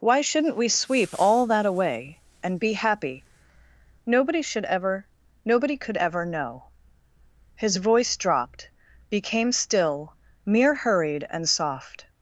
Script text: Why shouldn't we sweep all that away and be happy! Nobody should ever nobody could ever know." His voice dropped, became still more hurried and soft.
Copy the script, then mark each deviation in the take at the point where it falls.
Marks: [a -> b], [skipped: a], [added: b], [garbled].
Why shouldn't we sweep all that away and be happy! Nobody should ever nobody could ever know." His voice dropped, became still [more -> mere] hurried and soft.